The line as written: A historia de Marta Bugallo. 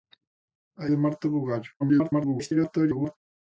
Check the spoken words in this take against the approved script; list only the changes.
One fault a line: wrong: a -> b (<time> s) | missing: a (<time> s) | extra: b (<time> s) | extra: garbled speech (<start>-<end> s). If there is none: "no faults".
missing: historia (0.9 s)
extra: garbled speech (1.8-3.2 s)